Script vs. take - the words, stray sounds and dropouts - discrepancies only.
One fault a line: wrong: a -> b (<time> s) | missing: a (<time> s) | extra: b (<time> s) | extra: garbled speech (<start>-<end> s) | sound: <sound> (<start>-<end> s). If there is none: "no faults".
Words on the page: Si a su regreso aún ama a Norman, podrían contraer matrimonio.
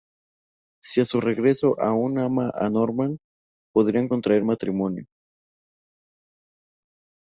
no faults